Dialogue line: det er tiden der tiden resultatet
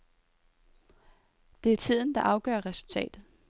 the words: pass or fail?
fail